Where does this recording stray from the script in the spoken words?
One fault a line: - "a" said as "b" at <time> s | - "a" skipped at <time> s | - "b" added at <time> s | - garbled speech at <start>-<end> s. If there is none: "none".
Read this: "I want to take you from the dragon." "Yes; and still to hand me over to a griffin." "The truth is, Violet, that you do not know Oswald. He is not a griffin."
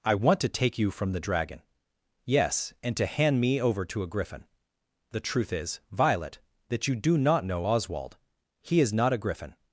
- "still" skipped at 3.0 s